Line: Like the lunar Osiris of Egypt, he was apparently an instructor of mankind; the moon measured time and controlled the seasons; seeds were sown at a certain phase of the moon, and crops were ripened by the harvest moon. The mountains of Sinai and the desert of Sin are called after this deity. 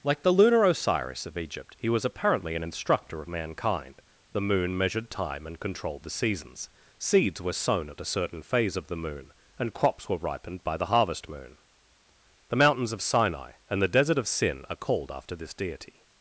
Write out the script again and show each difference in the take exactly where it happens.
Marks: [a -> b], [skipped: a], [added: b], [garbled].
Like the lunar Osiris of Egypt, he was apparently an instructor of mankind; the moon measured time and controlled the seasons; seeds were sown at a certain phase of the moon, and crops were ripened by the harvest moon. The mountains of Sinai and the desert of Sin are called after this deity.